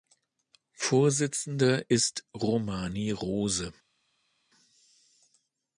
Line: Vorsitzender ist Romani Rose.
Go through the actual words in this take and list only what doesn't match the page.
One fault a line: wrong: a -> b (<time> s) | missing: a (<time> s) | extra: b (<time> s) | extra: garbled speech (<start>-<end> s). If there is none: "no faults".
no faults